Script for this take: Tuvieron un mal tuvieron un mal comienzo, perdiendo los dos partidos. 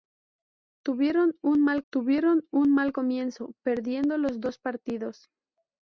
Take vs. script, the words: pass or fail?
pass